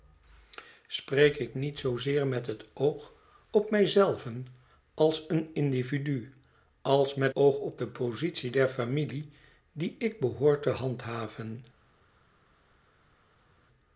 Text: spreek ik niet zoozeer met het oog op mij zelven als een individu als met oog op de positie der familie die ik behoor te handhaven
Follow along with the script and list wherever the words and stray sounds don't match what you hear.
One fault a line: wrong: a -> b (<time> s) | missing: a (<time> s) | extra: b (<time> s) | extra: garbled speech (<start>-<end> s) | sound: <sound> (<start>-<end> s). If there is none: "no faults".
no faults